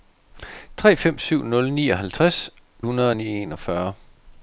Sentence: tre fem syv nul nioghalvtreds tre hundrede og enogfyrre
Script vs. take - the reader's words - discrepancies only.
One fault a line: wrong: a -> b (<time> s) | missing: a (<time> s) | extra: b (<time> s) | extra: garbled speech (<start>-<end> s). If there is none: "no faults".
missing: tre (2.5 s)